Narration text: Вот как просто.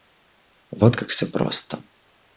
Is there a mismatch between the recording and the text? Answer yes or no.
yes